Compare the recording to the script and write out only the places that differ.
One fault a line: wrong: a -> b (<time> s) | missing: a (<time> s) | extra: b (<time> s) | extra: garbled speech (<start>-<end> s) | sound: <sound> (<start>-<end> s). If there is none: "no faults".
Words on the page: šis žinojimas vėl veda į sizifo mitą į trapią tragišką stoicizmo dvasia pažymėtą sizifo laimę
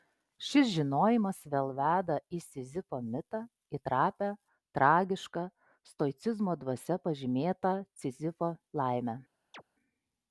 sound: chirp (9.5-9.6 s)